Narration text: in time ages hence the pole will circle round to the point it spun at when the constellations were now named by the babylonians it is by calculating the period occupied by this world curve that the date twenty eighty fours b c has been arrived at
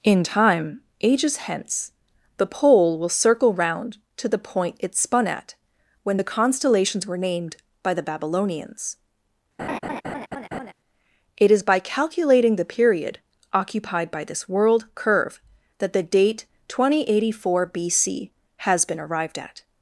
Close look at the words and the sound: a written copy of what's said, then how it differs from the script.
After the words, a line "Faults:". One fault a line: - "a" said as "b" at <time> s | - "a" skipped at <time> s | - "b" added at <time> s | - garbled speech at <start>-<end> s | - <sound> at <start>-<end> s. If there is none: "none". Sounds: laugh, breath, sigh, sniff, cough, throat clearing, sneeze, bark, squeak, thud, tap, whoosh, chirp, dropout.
in time ages hence the pole will circle round to the point it spun at when the constellations were named by the babylonians it is by calculating the period occupied by this world curve that the date twenty eighty four b c has been arrived at
Faults:
- "now" skipped at 7.2 s
- laugh at 9.6-10.7 s
- "fours" said as "four" at 17.4 s